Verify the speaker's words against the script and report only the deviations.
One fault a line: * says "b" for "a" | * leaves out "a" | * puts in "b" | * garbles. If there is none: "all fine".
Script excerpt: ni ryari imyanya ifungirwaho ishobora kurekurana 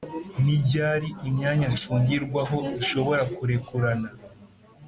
all fine